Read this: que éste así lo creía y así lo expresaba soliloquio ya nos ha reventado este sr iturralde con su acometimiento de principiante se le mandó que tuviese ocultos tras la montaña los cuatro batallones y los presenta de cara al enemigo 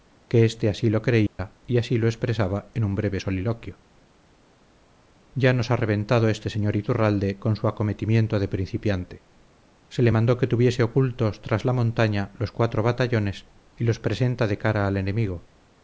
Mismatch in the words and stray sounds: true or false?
true